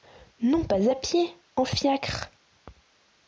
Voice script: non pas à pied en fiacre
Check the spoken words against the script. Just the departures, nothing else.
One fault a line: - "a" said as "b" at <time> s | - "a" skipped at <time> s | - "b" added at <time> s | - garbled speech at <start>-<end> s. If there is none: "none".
none